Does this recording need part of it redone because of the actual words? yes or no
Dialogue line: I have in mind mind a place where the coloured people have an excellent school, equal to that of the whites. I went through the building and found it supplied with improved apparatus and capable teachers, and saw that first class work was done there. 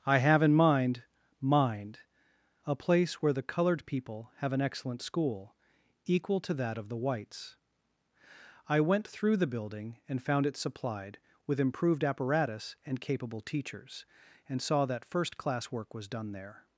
no